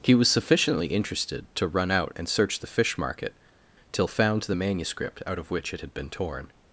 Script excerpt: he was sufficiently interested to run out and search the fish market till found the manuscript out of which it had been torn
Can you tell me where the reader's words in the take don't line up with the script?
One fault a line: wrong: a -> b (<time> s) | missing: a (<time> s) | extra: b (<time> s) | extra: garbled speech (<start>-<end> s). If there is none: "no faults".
no faults